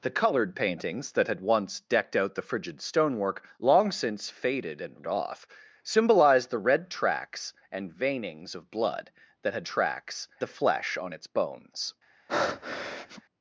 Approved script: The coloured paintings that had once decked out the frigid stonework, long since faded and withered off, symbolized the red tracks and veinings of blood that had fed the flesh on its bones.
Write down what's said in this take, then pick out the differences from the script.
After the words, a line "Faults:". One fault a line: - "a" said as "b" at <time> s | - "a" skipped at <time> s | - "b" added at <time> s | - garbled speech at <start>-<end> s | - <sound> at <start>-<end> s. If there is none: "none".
The coloured paintings that had once decked out the frigid stonework, long since faded and off, symbolized the red tracks and veinings of blood that had tracks the flesh on its bones.
Faults:
- "withered" skipped at 5.0 s
- "fed" said as "tracks" at 9.6 s
- breath at 12.3-13.2 s